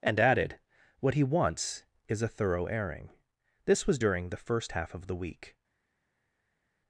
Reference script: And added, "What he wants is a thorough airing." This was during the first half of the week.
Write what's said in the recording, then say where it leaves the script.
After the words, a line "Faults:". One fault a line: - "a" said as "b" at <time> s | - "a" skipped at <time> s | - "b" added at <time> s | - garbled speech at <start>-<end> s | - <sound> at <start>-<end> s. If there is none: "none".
And added, "What he wants is a thorough airing." This was during the first half of the week.
Faults:
none